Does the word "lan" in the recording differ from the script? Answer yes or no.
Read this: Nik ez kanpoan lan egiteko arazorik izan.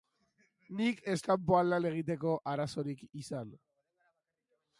no